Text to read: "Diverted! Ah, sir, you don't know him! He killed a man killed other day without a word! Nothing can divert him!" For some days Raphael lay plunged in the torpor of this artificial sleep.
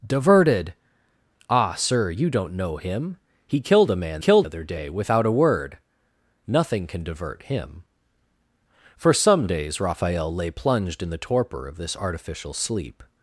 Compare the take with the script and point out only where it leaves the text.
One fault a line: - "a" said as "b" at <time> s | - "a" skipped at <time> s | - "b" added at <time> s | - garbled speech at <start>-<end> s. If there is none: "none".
none